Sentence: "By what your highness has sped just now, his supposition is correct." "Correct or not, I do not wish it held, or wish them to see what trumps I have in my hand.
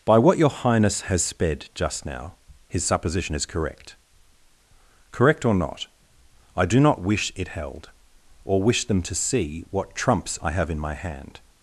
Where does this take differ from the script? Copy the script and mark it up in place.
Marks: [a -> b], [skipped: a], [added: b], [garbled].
"By what your highness has sped just now, his supposition is correct." "Correct or not, I do not wish it held, or wish them to see what trumps I have in my hand.